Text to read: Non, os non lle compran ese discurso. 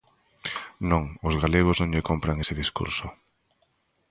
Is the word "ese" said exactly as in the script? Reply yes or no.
yes